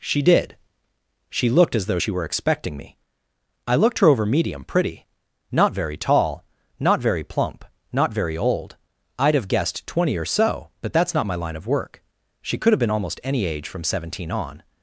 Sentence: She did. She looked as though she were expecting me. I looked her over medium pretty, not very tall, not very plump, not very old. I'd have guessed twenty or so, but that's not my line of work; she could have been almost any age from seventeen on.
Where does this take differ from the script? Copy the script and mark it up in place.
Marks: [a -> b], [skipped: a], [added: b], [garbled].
She did. She looked as though she were expecting me. I looked her over medium pretty, not very tall, not very plump, not very old. I'd have guessed twenty or so, but that's not my line of work; she could have been almost any age from seventeen on.